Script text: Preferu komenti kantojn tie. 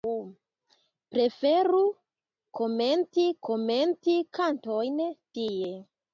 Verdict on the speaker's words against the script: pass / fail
fail